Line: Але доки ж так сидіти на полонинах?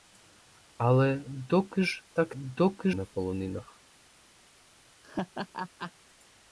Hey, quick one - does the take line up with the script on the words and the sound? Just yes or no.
no